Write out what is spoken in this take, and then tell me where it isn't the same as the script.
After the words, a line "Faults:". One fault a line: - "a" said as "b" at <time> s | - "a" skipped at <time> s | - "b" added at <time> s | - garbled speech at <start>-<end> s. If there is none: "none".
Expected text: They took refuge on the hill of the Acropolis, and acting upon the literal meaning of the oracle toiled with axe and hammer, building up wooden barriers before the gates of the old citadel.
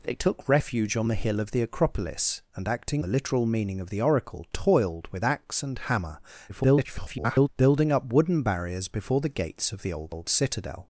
They took refuge on the hill of the Acropolis, and acting the literal meaning of the oracle toiled with axe and hammer, [garbled] building up wooden barriers before the gates of the old old citadel.
Faults:
- "upon" skipped at 3.0 s
- garbled speech at 6.5-7.5 s
- "old" added at 10.1 s